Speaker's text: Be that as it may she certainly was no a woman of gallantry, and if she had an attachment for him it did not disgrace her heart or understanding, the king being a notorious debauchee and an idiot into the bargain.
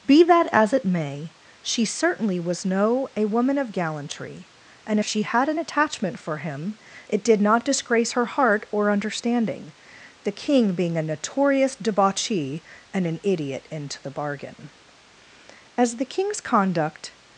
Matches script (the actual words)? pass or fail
fail